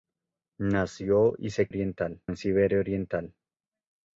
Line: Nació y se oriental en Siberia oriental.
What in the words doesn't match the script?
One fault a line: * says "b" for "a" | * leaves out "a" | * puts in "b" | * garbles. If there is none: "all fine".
all fine